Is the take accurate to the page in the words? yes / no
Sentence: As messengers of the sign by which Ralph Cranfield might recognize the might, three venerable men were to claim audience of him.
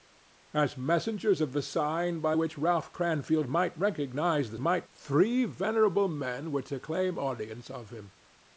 yes